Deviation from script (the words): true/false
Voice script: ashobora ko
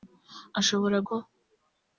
false